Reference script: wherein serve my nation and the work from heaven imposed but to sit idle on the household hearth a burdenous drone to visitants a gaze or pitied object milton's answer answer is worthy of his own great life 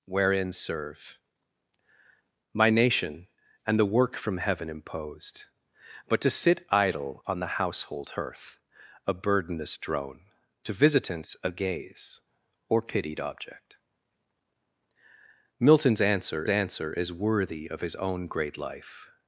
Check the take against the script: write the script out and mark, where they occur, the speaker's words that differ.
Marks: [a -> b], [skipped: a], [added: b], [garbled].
wherein serve my nation and the work from heaven imposed but to sit idle on the household hearth a burdenous drone to visitants a gaze or pitied object milton's answer answer is worthy of his own great life